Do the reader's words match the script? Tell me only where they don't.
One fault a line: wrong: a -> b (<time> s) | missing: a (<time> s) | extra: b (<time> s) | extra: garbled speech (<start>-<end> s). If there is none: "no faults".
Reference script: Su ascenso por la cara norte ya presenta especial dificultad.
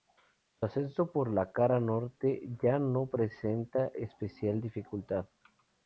extra: no (2.8 s)